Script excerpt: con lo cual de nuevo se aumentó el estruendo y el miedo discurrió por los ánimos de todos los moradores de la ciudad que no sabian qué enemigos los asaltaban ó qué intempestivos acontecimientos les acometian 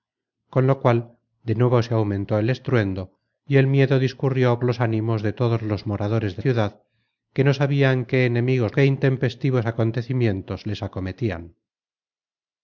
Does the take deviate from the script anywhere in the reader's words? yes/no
yes